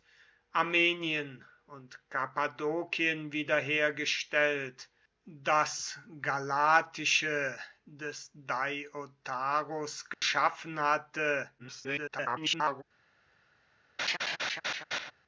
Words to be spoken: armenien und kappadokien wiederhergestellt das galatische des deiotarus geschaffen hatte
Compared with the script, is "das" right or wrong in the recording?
right